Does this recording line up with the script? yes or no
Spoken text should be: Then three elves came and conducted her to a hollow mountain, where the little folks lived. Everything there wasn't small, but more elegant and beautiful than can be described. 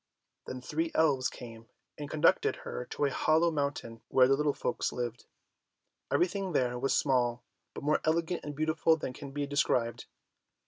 no